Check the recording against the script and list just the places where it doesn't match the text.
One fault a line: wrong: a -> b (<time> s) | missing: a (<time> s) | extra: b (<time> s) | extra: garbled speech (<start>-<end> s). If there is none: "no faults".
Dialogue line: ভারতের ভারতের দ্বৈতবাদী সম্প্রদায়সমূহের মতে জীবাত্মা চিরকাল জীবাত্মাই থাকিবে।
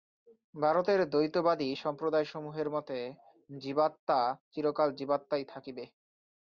missing: ভারতের (1.0 s)